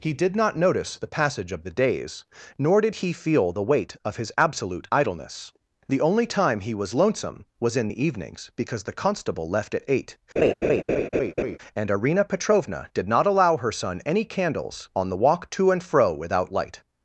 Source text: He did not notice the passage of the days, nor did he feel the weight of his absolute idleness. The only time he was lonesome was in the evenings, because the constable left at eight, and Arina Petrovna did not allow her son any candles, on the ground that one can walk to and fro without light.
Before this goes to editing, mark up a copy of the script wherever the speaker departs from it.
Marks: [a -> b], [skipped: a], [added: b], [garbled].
He did not notice the passage of the days, nor did he feel the weight of his absolute idleness. The only time he was lonesome was in the evenings, because the constable left at eight, and Arina Petrovna did not allow her son any candles, on the [skipped: ground that one can] walk to and fro without light.